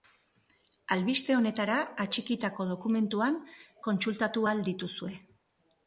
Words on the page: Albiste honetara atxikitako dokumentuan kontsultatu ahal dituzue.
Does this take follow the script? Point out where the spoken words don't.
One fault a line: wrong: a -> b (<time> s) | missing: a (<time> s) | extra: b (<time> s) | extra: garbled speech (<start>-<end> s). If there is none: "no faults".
no faults